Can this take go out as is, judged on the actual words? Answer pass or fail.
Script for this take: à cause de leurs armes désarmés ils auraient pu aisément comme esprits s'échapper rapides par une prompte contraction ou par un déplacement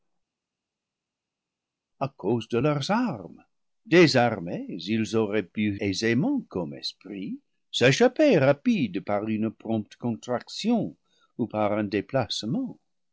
pass